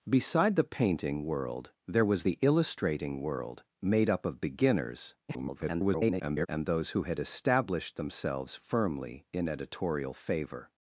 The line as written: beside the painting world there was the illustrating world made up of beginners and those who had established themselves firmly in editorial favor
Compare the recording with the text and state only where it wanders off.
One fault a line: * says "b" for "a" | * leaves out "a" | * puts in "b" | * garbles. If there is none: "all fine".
* garbles